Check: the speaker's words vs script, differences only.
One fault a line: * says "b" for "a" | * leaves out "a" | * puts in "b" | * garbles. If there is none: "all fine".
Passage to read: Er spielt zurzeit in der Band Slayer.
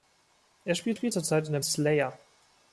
* puts in "spielt"
* leaves out "Band"